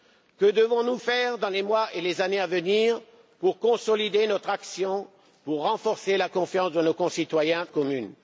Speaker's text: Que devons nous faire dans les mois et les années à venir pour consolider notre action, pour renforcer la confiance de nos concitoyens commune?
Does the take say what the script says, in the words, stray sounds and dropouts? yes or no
yes